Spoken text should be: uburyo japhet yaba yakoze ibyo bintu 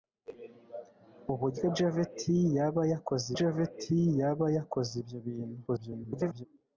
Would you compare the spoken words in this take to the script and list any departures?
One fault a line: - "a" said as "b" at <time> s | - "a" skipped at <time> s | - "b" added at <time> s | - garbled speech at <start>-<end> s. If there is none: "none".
- "japhet yaba yakoze" added at 3.4 s
- garbled speech at 5.7-6.5 s